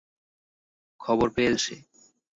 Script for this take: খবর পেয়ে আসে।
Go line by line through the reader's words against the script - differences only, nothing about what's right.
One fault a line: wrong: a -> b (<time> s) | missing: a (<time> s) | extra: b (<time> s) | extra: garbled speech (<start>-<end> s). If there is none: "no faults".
no faults